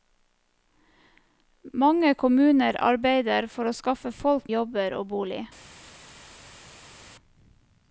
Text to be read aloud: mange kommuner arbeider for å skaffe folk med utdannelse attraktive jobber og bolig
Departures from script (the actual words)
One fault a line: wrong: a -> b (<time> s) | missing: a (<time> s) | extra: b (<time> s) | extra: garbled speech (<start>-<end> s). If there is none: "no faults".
missing: med utdannelse attraktive (4.5 s)